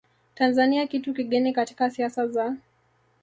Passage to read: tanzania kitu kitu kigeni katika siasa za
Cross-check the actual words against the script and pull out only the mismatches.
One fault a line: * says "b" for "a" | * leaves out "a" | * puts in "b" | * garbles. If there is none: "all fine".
* leaves out "kitu"